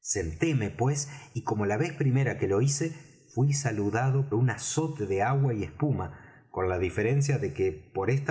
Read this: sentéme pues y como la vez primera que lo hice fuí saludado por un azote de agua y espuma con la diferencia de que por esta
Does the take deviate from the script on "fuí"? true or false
false